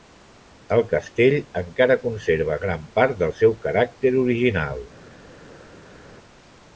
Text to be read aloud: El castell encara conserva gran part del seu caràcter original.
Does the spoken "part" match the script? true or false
true